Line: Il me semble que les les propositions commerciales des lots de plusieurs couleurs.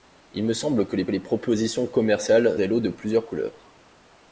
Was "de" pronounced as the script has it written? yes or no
yes